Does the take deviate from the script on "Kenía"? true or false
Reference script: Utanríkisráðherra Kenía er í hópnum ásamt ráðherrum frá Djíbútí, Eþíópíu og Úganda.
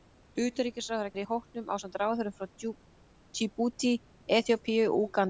true